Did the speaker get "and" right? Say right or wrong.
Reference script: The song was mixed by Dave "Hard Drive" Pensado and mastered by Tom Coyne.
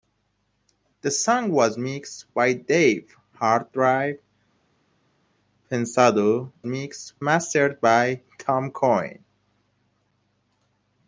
wrong